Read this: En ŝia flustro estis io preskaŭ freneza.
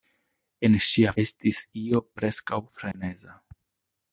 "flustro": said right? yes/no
no